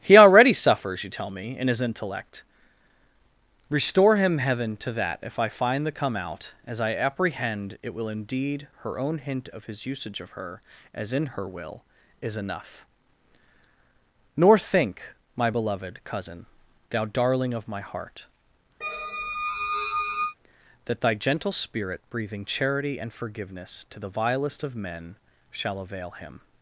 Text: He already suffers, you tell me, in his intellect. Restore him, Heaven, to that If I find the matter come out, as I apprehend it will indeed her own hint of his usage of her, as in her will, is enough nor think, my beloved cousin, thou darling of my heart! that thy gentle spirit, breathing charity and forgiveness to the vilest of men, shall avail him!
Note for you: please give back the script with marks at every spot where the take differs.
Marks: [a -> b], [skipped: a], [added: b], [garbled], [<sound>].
He already suffers, you tell me, in his intellect. Restore him, Heaven, to that If I find the [skipped: matter] come out, as I apprehend it will indeed her own hint of his usage of her, as in her will, is enough nor think, my beloved cousin, thou darling of my heart! [squeak] that thy gentle spirit, breathing charity and forgiveness to the vilest of men, shall avail him!